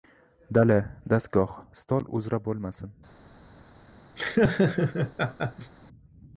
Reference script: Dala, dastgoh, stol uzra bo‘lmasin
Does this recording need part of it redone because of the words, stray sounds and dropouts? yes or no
yes